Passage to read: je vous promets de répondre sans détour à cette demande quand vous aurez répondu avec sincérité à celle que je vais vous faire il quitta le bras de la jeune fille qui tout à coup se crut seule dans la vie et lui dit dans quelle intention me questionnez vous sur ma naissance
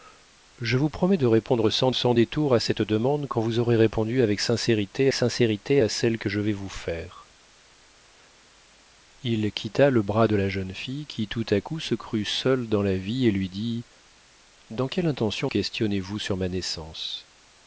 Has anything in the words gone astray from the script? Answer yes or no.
yes